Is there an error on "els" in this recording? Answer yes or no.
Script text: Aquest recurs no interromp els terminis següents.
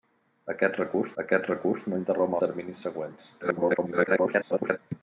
yes